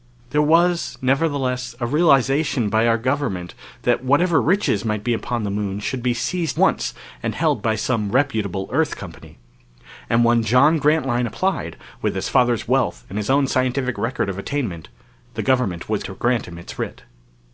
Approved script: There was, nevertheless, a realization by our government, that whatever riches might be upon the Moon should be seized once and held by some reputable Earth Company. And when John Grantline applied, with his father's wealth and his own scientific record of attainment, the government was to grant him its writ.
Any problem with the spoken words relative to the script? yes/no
no